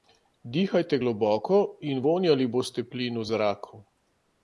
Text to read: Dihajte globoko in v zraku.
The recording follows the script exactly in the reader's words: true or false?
false